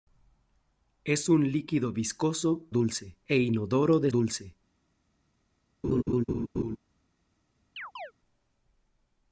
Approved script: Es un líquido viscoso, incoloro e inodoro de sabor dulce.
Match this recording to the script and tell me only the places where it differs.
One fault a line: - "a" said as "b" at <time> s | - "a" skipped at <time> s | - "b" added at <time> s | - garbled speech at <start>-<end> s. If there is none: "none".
- "incoloro" said as "dulce" at 2.7 s
- "sabor" skipped at 4.1 s